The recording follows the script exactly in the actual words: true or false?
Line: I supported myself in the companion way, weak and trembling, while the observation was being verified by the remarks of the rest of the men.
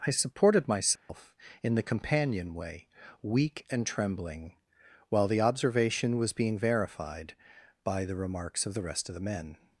true